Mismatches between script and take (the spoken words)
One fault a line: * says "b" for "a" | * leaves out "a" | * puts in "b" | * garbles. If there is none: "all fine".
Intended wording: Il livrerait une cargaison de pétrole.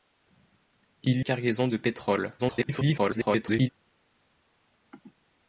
* leaves out "livrerait une"
* garbles